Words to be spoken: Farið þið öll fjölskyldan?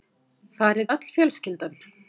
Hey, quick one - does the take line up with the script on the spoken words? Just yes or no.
no